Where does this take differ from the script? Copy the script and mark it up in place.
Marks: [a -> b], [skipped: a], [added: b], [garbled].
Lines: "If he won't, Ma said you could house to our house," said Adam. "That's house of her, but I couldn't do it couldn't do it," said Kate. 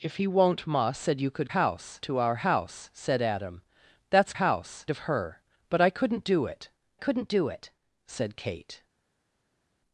"If he won't, Ma said you could house to our house," said Adam. "That's house of her, but I couldn't do it couldn't do it," said Kate.